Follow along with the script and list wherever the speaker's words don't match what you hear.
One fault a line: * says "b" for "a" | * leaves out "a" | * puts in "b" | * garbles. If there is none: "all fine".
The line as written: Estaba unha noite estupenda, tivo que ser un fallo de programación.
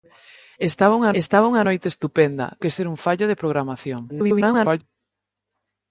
* puts in "estaba unha"
* leaves out "tivo"
* garbles